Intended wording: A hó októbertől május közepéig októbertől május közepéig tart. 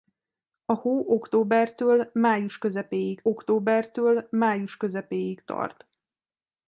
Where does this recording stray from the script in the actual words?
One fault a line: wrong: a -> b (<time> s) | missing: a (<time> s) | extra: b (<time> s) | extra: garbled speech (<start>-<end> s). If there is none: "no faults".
no faults